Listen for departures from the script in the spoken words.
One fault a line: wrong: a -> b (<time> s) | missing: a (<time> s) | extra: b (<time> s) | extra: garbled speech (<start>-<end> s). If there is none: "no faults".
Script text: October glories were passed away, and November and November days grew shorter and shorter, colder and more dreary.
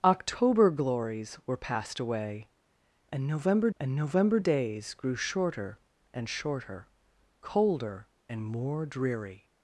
no faults